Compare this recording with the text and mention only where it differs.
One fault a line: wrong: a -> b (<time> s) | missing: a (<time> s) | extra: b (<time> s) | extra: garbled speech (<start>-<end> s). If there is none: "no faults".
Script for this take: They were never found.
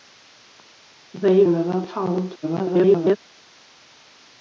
missing: were (1.4 s)
extra: garbled speech (2.4-3.2 s)